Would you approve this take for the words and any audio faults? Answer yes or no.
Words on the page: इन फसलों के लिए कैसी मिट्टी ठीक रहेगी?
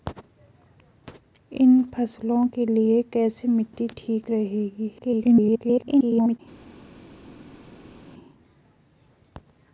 no